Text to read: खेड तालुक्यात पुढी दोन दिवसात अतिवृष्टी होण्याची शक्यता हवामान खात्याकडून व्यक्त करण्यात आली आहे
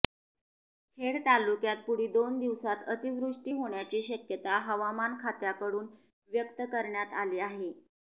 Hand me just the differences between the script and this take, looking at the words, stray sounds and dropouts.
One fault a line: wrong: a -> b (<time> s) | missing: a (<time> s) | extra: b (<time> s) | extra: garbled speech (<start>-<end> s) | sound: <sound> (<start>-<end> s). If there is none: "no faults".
no faults